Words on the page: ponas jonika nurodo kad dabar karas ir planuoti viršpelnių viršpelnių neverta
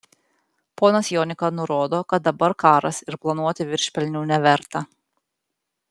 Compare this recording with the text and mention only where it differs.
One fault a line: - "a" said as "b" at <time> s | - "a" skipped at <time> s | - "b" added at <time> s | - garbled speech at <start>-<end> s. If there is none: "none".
- "viršpelnių" skipped at 4.2 s